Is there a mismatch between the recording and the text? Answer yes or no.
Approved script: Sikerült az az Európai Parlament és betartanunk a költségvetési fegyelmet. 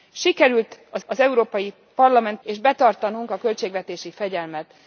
no